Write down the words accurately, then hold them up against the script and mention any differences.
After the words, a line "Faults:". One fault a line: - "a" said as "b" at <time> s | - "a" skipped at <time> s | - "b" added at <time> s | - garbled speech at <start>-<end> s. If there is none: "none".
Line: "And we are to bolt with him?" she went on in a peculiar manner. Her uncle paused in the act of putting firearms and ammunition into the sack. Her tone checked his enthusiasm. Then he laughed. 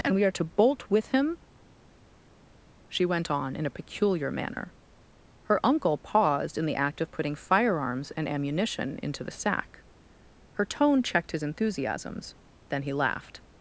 "And we are to bolt with him?" she went on in a peculiar manner. Her uncle paused in the act of putting firearms and ammunition into the sack. Her tone checked his enthusiasms. Then he laughed.
Faults:
- "enthusiasm" said as "enthusiasms" at 11.4 s